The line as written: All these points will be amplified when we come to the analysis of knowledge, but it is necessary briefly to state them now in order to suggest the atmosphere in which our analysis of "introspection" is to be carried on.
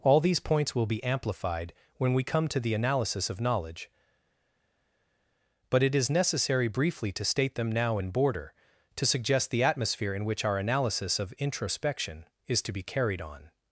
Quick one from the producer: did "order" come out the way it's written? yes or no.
no